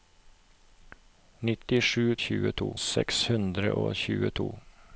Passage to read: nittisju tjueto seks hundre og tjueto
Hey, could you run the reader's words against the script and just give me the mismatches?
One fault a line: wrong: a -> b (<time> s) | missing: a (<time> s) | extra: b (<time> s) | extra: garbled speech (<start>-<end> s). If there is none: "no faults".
no faults